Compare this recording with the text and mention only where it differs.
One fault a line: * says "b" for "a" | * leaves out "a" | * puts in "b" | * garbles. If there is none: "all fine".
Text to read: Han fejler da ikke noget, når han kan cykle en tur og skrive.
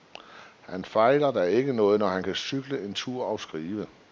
all fine